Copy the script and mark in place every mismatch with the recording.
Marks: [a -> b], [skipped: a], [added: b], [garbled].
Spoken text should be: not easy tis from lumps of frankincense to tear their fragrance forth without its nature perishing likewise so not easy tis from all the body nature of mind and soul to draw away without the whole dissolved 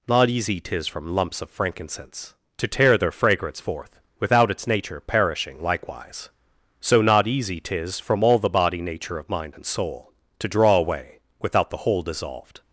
not easy tis from lumps of frankincense to tear their fragrance forth without its nature perishing likewise so not easy tis from all the body nature of mind and soul to draw away without the whole dissolved